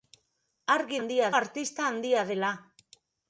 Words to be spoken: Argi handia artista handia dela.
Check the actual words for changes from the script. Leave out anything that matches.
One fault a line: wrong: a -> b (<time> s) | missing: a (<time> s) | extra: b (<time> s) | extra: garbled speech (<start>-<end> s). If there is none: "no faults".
no faults